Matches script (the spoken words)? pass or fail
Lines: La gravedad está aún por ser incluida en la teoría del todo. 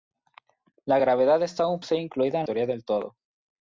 fail